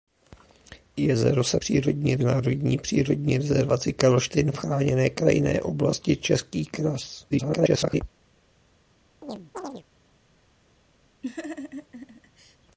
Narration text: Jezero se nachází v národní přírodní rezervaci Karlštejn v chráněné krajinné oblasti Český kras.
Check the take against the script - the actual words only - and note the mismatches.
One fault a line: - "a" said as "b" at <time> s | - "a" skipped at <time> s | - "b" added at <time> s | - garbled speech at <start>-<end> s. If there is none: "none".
- "nachází" said as "přírodní" at 1.5 s
- garbled speech at 7.3-8.0 s